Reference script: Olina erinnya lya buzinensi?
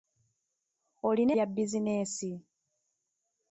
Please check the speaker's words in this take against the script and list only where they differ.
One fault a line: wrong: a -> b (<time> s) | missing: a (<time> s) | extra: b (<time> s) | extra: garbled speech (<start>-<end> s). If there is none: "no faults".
missing: erinnya (1.3 s)